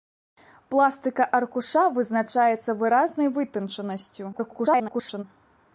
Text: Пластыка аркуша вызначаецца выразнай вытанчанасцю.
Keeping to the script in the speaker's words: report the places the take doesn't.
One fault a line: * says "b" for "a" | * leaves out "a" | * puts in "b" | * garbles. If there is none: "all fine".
* garbles